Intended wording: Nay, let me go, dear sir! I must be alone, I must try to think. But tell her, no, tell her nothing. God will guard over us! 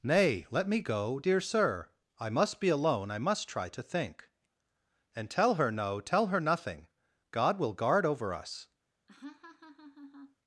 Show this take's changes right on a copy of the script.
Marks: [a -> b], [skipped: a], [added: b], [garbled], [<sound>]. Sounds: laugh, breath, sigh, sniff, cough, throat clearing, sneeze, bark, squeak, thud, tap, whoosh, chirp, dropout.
Nay, let me go, dear sir! I must be alone, I must try to think. [But -> And] tell her, no, tell her nothing. God will guard over us! [laugh]